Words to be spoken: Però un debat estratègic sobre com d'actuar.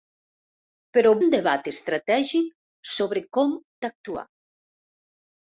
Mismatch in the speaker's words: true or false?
false